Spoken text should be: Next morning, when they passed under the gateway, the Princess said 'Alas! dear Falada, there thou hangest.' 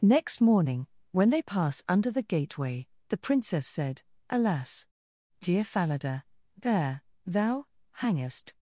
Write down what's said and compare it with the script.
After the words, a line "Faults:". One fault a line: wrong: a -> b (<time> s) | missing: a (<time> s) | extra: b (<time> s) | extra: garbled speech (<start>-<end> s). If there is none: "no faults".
Next morning, when they pass under the gateway, the Princess said 'Alas! dear Falada, there thou hangest.'
Faults:
wrong: passed -> pass (1.4 s)